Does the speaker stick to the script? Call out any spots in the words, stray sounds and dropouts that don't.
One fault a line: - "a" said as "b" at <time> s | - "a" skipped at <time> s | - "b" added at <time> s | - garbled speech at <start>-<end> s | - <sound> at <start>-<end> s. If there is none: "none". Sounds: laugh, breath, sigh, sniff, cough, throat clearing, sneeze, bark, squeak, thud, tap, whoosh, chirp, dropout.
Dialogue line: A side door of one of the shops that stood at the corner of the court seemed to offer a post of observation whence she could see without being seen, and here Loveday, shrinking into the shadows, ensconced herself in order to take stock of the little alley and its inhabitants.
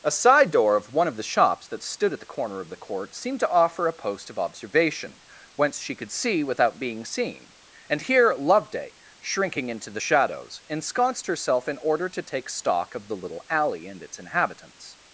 none